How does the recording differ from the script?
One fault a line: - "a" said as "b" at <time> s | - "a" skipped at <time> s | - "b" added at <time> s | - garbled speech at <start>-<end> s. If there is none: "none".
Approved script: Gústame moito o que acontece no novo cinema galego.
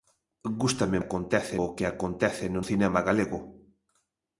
- "moito" said as "acontece" at 1.0 s
- "novo" skipped at 2.6 s